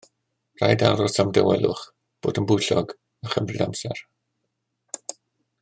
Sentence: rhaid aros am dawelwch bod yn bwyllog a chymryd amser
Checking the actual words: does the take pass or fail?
pass